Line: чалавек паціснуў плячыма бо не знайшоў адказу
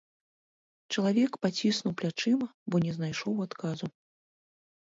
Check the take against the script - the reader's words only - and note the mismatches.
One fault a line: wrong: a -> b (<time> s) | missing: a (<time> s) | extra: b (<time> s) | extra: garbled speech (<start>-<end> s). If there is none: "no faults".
no faults